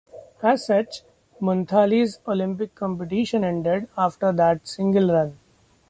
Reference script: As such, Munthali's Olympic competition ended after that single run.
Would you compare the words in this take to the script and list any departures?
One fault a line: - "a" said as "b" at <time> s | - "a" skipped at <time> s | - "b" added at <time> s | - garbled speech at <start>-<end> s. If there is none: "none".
none